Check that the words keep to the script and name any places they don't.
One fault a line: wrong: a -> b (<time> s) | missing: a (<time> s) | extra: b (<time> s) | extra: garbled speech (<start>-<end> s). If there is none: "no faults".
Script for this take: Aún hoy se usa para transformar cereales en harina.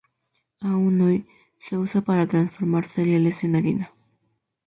no faults